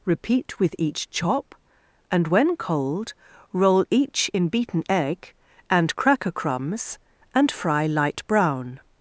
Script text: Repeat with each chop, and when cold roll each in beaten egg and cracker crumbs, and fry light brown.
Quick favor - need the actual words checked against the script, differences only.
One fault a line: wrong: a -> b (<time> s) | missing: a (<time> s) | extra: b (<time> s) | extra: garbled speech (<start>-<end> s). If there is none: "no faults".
no faults